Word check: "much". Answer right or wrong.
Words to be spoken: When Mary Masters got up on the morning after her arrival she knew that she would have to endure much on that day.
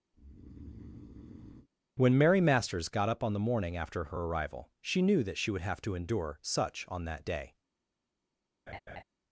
wrong